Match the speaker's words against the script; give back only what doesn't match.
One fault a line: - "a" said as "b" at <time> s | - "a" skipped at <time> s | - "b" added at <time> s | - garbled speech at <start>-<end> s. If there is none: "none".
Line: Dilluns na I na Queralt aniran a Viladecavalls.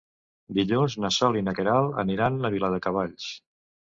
- "Sol" added at 1.2 s